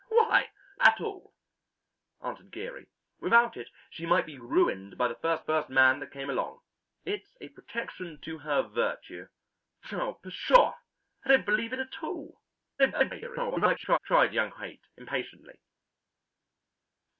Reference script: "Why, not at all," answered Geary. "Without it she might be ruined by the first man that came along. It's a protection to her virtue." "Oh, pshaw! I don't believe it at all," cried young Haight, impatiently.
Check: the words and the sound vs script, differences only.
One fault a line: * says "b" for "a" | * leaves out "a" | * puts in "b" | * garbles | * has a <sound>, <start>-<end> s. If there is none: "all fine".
* leaves out "not"
* puts in "first"
* garbles